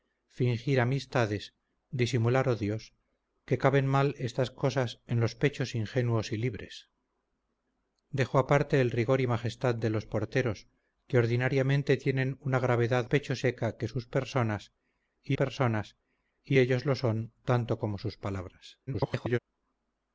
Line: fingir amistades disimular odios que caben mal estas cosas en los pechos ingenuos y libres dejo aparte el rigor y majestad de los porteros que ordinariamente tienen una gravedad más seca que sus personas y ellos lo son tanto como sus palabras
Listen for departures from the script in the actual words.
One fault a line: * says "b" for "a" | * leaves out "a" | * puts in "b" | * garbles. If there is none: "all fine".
* says "pechos" for "más"
* puts in "personas y"
* garbles